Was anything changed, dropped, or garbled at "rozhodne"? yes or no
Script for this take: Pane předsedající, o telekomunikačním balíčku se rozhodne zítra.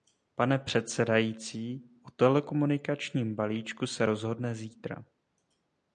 no